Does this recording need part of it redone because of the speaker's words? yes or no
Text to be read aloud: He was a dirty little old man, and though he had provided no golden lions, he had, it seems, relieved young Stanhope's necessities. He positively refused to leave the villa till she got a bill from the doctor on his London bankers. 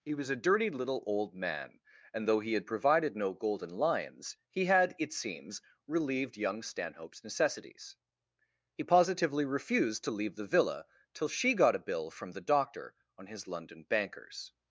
no